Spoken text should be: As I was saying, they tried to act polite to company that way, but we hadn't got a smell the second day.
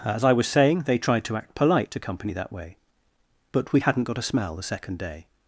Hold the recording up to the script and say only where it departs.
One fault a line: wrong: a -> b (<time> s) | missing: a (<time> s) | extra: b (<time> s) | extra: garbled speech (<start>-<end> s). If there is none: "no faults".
no faults